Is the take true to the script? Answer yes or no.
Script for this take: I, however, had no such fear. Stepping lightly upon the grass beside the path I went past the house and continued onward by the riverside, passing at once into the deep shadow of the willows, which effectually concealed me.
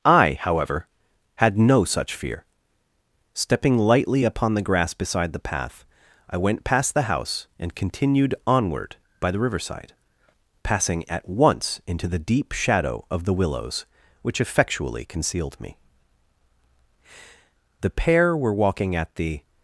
no